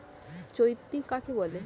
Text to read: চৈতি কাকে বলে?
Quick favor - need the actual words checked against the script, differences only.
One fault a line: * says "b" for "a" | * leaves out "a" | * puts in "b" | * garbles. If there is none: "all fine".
all fine